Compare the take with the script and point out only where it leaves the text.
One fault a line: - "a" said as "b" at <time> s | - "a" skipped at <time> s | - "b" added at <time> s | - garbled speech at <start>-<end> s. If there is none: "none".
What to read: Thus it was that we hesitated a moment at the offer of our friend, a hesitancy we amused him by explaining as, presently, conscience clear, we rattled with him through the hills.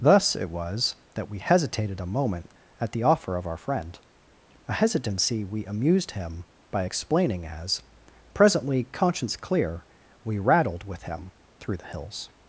none